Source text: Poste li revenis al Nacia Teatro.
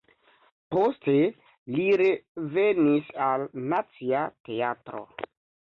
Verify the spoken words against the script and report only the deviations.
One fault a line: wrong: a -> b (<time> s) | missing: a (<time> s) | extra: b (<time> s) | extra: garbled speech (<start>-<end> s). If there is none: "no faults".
no faults